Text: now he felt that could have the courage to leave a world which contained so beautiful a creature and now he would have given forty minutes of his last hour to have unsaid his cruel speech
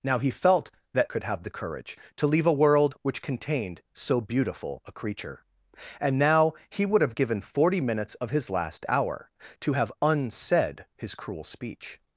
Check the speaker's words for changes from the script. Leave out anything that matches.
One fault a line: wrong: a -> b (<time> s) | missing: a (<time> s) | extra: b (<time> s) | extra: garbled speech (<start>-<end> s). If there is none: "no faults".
no faults